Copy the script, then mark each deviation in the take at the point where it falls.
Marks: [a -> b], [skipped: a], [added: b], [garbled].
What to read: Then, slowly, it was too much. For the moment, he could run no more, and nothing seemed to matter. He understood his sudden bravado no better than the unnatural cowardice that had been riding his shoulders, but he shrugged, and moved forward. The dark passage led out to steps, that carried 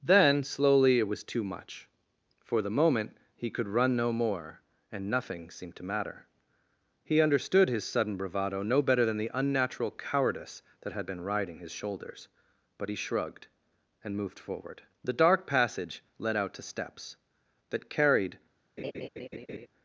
Then, slowly, it was too much. For the moment, he could run no more, and nothing seemed to matter. He understood his sudden bravado no better than the unnatural cowardice that had been riding his shoulders, but he shrugged, and moved forward. The dark passage led out to steps, that carried